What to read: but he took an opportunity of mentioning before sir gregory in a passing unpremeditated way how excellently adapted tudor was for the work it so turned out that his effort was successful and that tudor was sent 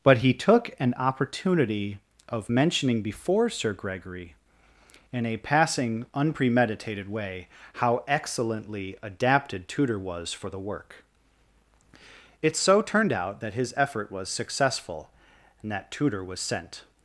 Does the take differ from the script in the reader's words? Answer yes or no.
no